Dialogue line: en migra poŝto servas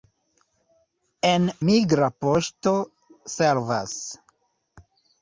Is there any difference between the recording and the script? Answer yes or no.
no